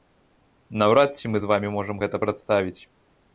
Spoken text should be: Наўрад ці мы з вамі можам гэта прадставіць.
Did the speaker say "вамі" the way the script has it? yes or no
yes